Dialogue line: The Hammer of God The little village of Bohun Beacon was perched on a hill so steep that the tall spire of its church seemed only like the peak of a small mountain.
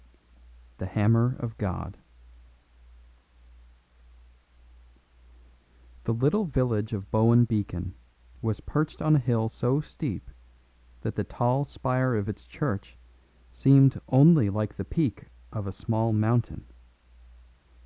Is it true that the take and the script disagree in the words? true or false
false